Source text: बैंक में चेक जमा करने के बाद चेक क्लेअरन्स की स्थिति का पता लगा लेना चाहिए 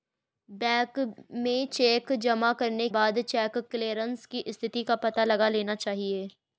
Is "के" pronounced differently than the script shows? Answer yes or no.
yes